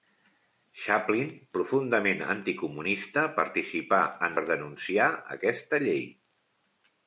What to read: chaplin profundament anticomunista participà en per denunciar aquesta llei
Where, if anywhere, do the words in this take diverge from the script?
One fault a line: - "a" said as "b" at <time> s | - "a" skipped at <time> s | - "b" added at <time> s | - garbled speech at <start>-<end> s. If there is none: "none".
none